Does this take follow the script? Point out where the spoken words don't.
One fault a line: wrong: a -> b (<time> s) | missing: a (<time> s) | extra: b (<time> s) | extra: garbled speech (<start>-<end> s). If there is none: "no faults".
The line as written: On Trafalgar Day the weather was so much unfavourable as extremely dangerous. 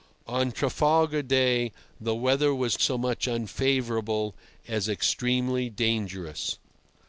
no faults